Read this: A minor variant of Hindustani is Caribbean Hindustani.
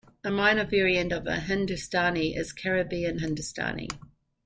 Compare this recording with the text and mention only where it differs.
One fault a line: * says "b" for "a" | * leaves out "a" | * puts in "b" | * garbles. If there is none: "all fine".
all fine